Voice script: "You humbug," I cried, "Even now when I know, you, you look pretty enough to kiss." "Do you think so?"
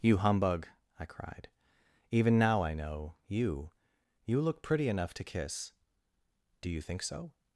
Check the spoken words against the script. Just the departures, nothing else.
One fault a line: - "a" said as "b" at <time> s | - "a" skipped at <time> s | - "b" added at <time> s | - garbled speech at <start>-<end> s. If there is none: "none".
- "when" skipped at 2.6 s